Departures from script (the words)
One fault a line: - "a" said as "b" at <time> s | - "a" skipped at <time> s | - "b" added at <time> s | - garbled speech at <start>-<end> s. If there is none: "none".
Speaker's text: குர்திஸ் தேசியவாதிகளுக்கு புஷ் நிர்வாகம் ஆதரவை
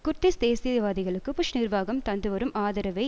- "தந்துவரும்" added at 2.0 s